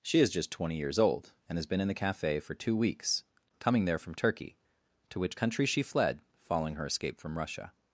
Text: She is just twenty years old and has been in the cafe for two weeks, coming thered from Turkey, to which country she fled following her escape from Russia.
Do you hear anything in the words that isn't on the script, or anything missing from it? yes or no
yes